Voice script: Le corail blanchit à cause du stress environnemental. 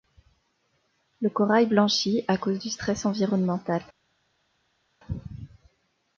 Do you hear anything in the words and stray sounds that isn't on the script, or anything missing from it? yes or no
no